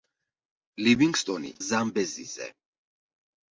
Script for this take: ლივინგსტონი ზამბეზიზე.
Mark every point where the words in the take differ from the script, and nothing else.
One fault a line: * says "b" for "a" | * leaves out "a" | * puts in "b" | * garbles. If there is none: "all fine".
all fine